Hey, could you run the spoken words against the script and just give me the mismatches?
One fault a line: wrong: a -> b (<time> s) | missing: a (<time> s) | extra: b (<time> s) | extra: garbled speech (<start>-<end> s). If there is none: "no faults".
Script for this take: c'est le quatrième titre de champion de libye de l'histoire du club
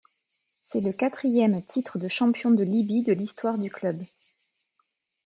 no faults